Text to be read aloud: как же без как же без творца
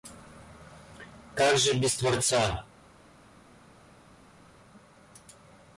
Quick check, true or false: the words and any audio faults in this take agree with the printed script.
false